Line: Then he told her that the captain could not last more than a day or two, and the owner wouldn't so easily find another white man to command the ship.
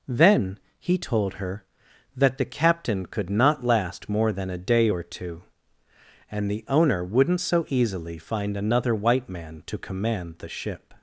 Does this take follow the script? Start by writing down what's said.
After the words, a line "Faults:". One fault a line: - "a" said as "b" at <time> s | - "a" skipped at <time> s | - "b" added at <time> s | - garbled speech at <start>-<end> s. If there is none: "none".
Then he told her that the captain could not last more than a day or two, and the owner wouldn't so easily find another white man to command the ship.
Faults:
none